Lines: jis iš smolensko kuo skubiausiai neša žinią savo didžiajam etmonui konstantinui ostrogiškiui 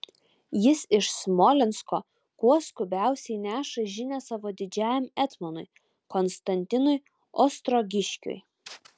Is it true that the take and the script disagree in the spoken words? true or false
false